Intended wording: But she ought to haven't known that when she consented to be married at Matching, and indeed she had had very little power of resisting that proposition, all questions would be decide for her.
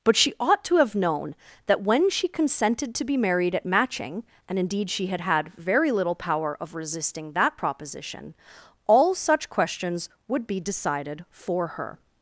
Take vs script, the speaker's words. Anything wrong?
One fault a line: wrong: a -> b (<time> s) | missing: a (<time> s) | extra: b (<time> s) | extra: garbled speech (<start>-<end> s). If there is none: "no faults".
wrong: haven't -> have (0.8 s)
extra: such (9.1 s)
wrong: decide -> decided (10.6 s)